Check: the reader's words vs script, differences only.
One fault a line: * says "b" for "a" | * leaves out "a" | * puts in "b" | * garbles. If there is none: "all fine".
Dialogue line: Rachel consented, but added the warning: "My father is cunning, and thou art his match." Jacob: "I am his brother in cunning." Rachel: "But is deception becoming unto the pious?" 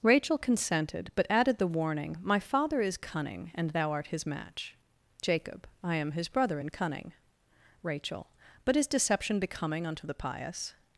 all fine